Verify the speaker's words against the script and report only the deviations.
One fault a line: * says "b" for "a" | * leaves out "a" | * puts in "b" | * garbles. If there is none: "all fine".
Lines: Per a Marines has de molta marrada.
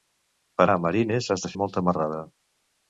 all fine